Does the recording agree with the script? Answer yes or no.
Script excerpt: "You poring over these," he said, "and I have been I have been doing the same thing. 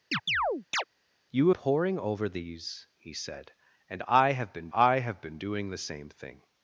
yes